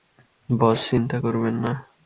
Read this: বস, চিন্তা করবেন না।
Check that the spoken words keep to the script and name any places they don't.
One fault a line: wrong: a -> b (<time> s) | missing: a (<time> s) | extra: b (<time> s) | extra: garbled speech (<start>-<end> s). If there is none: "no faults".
no faults